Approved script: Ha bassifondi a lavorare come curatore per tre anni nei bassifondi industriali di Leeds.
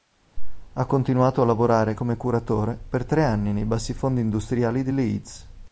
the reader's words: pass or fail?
fail